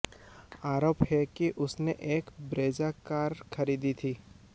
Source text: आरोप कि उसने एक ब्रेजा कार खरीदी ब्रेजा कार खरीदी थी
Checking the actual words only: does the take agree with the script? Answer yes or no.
no